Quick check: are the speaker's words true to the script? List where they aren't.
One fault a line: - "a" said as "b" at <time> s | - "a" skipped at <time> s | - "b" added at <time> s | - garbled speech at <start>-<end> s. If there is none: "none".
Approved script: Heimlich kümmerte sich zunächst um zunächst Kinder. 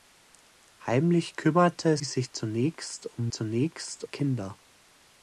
none